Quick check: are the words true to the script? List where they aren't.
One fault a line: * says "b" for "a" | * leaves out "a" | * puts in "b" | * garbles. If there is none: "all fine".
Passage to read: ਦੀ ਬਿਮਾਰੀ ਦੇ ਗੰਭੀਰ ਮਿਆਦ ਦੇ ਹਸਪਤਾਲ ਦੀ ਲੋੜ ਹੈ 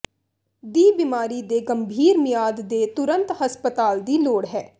* puts in "ਤੁਰੰਤ"